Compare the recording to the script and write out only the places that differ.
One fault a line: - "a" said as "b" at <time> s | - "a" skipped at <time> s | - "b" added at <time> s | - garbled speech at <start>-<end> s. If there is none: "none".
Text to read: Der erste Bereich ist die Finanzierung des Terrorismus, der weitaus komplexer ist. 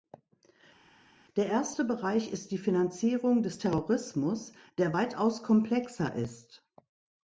none